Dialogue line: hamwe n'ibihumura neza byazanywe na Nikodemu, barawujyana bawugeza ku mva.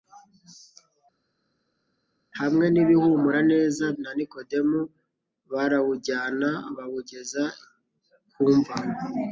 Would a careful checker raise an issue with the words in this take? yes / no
yes